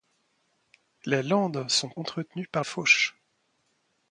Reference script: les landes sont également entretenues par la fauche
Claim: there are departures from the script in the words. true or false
true